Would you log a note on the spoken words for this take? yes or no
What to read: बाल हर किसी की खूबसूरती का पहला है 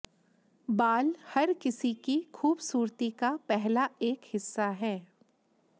yes